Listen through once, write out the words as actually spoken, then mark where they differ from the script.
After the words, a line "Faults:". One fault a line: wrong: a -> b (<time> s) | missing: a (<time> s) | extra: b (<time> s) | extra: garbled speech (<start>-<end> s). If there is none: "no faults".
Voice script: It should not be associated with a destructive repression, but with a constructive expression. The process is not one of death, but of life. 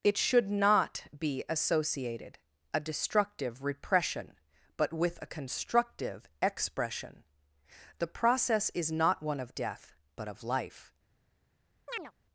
It should not be associated a destructive repression, but with a constructive expression. The process is not one of death, but of life.
Faults:
missing: with (2.4 s)